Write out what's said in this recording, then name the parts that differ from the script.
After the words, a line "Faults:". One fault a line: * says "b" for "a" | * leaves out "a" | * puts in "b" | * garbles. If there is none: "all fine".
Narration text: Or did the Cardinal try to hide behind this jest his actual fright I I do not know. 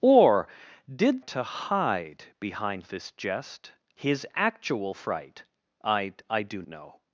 Or did to hide behind this jest his actual fright I I do know.
Faults:
* leaves out "the Cardinal try"
* leaves out "not"